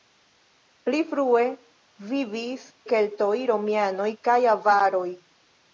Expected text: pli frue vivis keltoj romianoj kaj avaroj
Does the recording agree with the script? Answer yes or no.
yes